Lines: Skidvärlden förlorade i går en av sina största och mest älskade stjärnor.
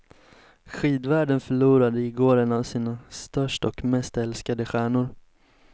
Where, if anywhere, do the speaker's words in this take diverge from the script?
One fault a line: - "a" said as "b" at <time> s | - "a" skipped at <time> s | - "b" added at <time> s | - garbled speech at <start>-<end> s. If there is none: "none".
none